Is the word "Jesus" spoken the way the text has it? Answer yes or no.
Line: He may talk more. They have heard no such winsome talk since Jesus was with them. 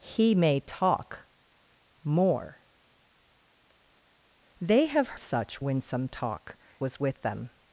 no